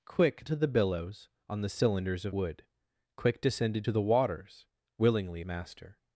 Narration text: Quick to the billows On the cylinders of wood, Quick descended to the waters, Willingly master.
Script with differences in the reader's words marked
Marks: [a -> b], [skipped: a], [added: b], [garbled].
Quick to the billows On the cylinders of wood, Quick descended to the waters, Willingly master.